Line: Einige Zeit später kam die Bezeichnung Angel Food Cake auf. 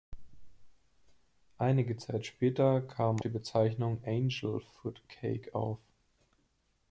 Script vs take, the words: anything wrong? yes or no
no